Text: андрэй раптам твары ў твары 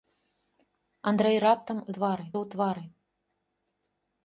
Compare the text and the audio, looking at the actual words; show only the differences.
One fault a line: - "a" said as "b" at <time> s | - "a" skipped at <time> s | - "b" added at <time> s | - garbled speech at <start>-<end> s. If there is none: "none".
none